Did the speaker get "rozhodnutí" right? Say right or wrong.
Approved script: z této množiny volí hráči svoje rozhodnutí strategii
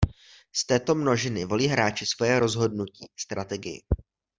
right